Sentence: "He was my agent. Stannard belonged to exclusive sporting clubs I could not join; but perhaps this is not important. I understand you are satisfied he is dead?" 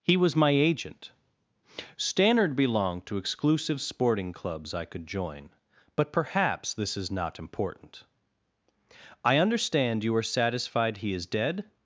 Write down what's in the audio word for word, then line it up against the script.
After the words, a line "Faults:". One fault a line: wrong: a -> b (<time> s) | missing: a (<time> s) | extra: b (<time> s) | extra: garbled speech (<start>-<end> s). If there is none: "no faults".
"He was my agent. Stannard belonged to exclusive sporting clubs I could join; but perhaps this is not important. I understand you are satisfied he is dead?"
Faults:
missing: not (5.1 s)